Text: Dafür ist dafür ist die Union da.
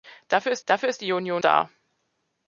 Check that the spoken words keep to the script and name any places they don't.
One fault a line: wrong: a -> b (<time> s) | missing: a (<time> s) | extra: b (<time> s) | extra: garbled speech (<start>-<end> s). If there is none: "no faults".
no faults